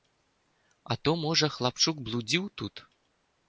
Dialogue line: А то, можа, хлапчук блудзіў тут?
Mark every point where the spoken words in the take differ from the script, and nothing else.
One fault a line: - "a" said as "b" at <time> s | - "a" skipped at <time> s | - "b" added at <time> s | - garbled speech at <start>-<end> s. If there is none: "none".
none